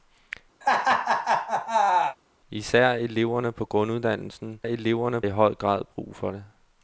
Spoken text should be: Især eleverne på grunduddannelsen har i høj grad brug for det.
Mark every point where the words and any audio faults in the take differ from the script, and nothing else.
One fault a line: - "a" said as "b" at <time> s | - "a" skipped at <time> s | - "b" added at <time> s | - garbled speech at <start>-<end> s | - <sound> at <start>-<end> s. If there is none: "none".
- laugh at 0.6-2.2 s
- "har" said as "eleverne" at 4.6 s